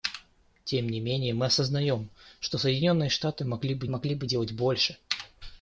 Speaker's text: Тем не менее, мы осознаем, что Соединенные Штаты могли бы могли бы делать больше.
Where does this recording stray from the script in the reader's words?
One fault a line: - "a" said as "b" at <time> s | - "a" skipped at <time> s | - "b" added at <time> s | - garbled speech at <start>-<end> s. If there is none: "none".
none